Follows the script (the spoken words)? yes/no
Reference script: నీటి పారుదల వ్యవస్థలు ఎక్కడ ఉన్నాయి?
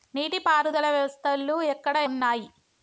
yes